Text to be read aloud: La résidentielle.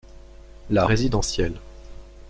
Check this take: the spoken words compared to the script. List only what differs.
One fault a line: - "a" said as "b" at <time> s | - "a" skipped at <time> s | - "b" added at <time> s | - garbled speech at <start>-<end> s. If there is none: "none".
none